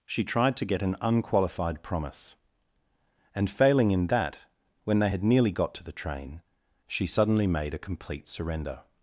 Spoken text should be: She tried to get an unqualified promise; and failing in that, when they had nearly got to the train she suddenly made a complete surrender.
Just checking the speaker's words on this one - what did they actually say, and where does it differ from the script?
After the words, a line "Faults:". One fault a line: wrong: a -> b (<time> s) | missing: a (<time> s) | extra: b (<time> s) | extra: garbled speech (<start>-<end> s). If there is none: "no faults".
She tried to get an unqualified promise; and failing in that, when they had nearly got to the train she suddenly made a complete surrender.
Faults:
no faults